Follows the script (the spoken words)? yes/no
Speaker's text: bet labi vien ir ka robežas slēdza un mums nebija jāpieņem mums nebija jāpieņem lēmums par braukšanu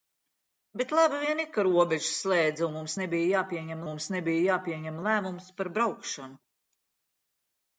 yes